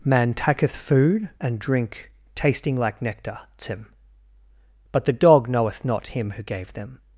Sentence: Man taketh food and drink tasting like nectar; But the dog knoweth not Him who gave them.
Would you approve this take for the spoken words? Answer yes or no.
no